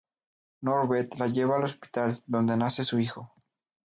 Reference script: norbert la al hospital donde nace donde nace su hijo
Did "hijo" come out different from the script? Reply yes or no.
no